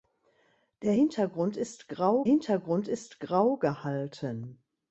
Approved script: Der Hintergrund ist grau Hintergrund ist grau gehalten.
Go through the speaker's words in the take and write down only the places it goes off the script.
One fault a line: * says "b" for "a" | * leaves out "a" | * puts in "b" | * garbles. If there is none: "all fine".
all fine